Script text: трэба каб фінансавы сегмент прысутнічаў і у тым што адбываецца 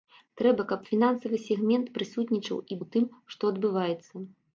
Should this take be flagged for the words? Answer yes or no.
no